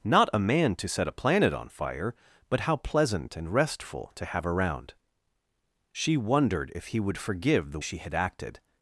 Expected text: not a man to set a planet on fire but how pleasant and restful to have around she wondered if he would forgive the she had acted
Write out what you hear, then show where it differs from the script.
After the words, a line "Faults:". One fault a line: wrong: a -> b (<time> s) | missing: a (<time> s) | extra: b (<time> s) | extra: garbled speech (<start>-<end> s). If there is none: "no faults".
not a man to set a planet on fire but how pleasant and restful to have around she wondered if he would forgive the she had acted
Faults:
no faults